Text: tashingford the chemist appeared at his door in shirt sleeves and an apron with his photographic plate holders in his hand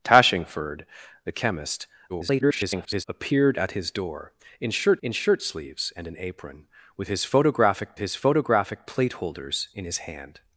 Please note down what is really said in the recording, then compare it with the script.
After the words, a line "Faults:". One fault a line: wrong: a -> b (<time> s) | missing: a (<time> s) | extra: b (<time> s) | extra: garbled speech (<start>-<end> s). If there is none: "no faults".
tashingford the chemist [garbled] appeared at his door in shirt in shirt sleeves and an apron with his photographic his photographic plate holders in his hand
Faults:
extra: garbled speech (2.1-3.0 s)
extra: in shirt (5.0 s)
extra: his photographic (8.0 s)